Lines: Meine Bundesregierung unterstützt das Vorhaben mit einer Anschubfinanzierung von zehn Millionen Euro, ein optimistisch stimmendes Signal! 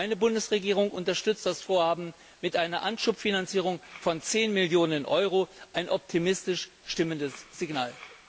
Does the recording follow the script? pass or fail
pass